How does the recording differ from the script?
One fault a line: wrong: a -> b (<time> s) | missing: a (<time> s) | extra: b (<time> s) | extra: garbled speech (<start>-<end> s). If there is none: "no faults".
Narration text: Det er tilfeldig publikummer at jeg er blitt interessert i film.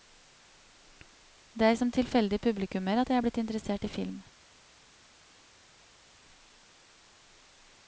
extra: som (1.8 s)